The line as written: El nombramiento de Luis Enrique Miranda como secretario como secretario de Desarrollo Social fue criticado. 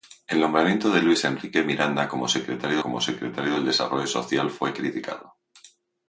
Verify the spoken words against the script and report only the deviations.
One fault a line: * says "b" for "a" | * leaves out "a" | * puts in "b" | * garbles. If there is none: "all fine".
all fine